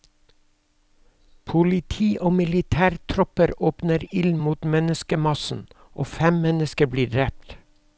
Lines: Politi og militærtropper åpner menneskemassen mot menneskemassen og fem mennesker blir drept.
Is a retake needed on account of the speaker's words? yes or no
yes